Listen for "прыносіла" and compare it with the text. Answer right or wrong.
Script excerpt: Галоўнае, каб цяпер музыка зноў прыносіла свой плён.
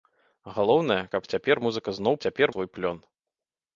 wrong